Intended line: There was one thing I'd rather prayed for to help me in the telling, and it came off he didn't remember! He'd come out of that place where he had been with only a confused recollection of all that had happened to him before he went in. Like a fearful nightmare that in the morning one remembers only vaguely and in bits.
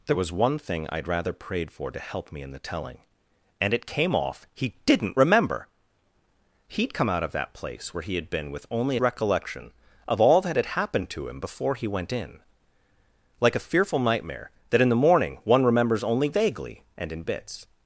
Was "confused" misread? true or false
true